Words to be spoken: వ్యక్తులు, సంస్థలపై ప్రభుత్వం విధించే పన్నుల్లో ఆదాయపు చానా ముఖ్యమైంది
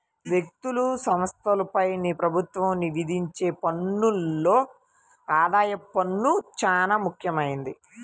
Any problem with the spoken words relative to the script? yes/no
yes